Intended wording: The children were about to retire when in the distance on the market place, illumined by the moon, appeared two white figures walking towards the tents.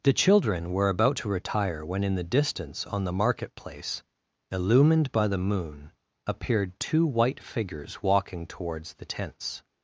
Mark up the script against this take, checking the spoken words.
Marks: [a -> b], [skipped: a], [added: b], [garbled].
The children were about to retire when in the distance on the market place, illumined by the moon, appeared two white figures walking towards the tents.